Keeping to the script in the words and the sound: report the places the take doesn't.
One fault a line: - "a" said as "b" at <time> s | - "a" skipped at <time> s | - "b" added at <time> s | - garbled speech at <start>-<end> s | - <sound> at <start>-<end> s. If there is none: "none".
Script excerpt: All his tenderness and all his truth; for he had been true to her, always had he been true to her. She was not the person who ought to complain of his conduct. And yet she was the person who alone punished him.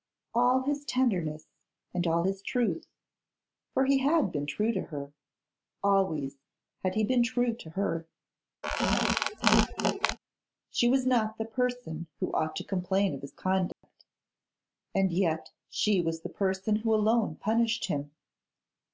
- squeak at 8.6-10.2 s
- dropout at 13.7-13.8 s